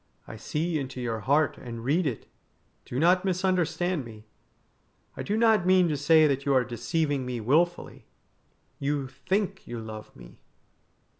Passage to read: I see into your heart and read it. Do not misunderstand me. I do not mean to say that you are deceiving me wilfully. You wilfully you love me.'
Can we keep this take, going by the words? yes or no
no